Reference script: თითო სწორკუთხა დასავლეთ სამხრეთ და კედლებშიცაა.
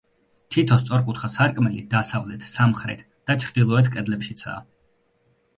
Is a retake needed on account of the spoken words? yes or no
yes